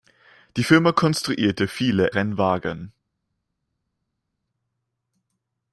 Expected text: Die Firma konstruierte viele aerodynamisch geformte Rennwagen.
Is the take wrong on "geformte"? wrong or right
wrong